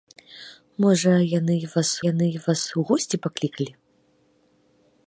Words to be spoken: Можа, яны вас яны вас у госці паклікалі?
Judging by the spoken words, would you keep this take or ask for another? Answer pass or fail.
pass